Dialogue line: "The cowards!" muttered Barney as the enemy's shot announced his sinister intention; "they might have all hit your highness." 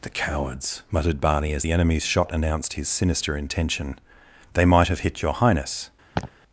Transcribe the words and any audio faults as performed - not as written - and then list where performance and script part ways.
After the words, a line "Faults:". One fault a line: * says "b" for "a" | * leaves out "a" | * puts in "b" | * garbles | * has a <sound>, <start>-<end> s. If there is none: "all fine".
"The cowards!" muttered Barney as the enemy's shot announced his sinister intention; "they might have hit your highness."
Faults:
* leaves out "all"
* has a laugh, 6.1-6.3 s